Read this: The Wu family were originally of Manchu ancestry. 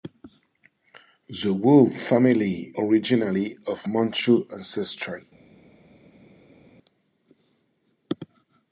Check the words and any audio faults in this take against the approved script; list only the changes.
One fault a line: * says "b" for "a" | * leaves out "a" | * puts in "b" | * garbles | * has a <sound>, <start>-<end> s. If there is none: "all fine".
* leaves out "were"